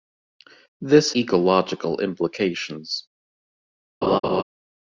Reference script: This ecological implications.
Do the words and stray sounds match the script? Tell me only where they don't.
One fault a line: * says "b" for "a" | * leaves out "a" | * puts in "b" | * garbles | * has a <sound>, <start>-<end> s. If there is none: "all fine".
* has a laugh, 4.0-4.4 s